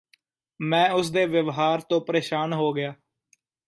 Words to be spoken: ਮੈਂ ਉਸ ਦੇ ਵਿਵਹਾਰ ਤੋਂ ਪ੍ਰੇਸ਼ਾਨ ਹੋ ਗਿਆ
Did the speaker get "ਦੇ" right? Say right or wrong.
right